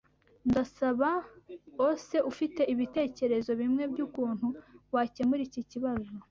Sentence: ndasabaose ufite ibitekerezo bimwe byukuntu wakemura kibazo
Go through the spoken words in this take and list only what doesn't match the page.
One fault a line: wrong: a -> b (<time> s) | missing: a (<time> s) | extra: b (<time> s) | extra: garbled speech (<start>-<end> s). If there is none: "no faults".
extra: iki (5.5 s)